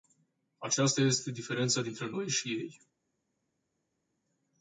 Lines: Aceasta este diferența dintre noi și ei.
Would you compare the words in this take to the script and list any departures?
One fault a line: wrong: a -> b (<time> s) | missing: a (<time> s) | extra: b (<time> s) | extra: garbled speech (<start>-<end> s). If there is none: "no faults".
no faults